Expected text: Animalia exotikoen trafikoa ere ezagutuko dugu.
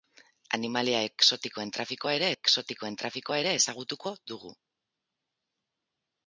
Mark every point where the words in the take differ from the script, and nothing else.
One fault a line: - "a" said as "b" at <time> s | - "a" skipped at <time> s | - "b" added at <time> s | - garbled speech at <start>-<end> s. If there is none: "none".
- "exotikoen trafikoa ere" added at 2.3 s